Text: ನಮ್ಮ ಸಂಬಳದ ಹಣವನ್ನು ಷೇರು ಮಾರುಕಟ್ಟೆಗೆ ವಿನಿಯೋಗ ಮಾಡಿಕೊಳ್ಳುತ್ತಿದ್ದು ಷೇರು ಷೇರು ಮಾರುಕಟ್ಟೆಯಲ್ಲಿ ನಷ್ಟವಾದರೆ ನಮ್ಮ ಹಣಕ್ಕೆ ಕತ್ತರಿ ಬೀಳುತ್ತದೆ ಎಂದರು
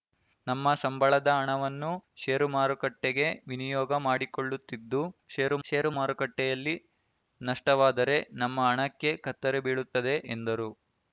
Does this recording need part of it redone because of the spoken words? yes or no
no